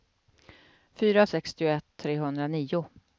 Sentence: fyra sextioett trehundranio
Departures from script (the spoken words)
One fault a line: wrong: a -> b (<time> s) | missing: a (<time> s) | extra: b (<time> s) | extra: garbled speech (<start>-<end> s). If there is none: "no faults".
no faults